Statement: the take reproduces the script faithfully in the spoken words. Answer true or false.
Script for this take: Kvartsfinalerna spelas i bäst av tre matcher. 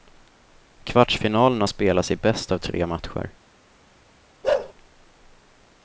true